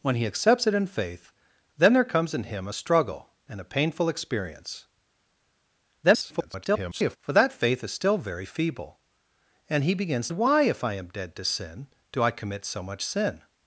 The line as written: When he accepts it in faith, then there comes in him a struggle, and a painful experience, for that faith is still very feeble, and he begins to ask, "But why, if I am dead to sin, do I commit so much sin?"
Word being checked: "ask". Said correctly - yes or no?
no